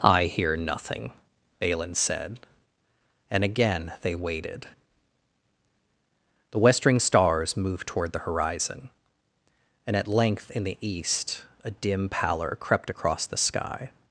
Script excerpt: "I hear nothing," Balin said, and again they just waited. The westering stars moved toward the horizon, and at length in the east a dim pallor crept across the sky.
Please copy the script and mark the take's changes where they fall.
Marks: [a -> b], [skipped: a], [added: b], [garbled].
"I hear nothing," Balin said, and again they [skipped: just] waited. The westering stars moved toward the horizon, and at length in the east a dim pallor crept across the sky.